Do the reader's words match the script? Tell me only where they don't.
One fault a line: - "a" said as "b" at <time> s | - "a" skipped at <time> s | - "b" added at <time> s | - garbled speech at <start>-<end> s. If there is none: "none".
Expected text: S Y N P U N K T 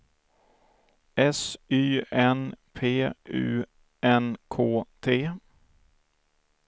none